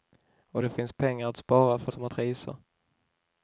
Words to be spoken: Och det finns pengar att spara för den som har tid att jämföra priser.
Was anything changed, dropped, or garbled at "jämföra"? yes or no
yes